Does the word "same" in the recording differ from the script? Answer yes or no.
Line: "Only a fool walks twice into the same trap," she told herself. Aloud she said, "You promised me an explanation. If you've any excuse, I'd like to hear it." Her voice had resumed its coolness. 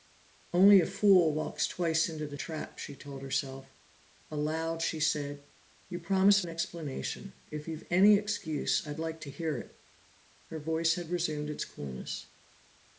yes